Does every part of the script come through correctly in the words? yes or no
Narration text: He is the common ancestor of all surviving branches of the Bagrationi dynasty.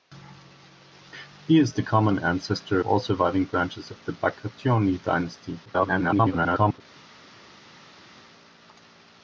no